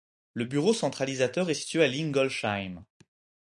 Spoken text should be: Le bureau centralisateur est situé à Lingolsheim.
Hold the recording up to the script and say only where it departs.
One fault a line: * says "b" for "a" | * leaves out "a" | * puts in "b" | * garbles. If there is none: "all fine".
all fine